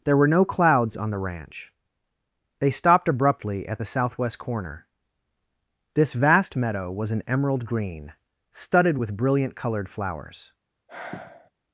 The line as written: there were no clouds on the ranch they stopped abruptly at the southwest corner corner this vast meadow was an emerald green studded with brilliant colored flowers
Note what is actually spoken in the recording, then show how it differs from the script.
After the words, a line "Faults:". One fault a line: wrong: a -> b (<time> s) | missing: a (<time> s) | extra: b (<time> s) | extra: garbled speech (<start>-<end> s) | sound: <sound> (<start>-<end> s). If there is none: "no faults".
there were no clouds on the ranch they stopped abruptly at the southwest corner this vast meadow was an emerald green studded with brilliant colored flowers
Faults:
missing: corner (4.9 s)
sound: sigh (10.9-11.5 s)